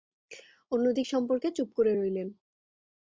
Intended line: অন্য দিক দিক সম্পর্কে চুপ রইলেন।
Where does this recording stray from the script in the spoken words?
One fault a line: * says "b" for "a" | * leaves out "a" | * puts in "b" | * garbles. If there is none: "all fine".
* leaves out "দিক"
* puts in "করে"